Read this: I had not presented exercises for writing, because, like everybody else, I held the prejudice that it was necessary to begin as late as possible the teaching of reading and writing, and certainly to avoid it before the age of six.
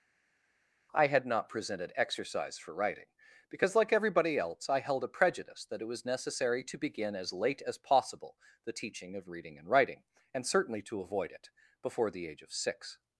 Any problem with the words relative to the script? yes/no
yes